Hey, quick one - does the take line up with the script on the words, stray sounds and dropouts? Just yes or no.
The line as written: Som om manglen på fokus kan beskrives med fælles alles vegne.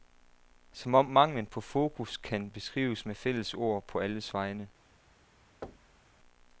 no